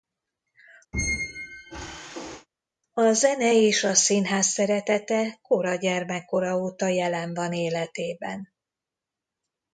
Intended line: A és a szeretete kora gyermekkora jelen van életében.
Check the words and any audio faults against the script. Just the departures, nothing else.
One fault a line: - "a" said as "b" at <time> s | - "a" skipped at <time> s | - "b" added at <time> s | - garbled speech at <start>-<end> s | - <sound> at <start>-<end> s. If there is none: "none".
- squeak at 0.9-2.5 s
- "zene" added at 3.1 s
- "színház" added at 3.9 s
- "óta" added at 6.6 s